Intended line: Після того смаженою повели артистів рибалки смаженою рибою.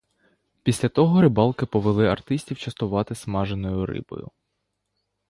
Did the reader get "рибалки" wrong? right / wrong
wrong